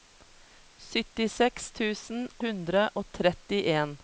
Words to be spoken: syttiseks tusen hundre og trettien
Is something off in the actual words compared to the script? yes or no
no